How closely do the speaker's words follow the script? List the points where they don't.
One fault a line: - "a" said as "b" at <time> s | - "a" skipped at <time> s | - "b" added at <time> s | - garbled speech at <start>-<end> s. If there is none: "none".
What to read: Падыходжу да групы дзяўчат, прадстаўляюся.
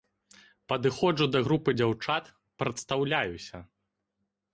none